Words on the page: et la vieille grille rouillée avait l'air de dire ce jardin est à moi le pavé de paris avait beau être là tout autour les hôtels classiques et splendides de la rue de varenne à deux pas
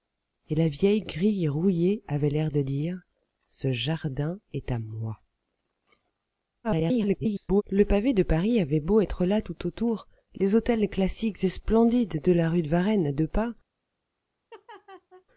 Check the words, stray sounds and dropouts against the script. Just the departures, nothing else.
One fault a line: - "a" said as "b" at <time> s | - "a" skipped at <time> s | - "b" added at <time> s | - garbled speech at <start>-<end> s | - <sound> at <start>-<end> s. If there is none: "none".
- garbled speech at 6.6-7.6 s
- laugh at 14.5-15.2 s